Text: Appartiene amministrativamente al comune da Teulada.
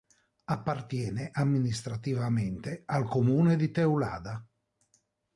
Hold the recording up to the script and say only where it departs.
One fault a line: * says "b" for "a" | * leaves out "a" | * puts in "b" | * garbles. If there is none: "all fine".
* says "di" for "da"